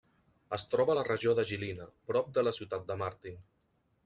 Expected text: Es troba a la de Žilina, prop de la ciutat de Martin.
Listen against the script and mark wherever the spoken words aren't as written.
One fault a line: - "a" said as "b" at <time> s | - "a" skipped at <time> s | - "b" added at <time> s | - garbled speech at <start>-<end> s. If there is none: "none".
- "regió" added at 1.1 s